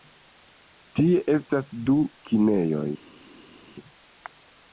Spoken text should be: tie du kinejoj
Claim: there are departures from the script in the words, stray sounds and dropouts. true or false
true